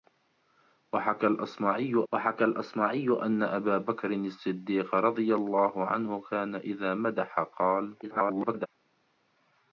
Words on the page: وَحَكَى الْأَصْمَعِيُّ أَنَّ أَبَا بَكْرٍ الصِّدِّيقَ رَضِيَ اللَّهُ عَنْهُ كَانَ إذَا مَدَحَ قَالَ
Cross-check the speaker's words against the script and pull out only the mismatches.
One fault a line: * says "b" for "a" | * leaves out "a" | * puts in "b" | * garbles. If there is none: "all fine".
* puts in "وَحَكَى الْأَصْمَعِيُّ"
* garbles